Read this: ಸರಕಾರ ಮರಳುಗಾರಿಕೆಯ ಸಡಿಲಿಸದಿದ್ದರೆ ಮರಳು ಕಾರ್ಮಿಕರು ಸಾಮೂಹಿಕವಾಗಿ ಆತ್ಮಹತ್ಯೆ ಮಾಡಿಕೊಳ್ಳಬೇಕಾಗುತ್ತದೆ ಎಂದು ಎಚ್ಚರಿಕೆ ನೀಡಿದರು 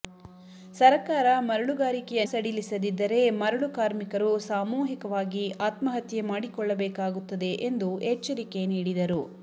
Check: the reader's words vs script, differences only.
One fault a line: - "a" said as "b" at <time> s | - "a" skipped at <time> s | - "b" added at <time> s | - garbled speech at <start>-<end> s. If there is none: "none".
none